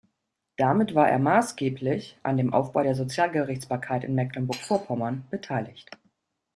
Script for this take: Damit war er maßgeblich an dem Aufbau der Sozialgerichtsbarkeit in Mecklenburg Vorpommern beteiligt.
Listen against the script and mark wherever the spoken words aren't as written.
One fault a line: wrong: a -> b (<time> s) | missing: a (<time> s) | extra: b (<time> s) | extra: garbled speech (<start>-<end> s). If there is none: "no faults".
no faults